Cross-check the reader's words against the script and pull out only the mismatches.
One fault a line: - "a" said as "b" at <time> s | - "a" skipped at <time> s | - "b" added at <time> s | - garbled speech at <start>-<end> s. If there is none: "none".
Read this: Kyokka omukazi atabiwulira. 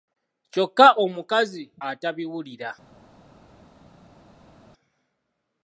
none